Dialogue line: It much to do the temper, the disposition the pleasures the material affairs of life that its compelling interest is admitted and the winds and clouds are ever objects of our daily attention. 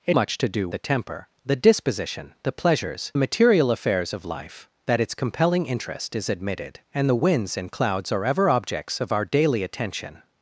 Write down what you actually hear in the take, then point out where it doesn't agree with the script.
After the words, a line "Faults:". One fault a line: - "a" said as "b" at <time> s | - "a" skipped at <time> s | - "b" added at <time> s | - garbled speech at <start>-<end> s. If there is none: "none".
It much to do the temper, the disposition the pleasures the material affairs of life that its compelling interest is admitted and the winds and clouds are ever objects of our daily attention.
Faults:
none